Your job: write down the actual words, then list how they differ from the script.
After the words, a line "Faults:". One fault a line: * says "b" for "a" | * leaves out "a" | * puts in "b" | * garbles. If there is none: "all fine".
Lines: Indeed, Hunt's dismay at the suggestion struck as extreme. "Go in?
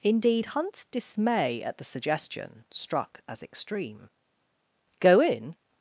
Indeed, Hunt's dismay at the suggestion struck as extreme. "Go in?
Faults:
all fine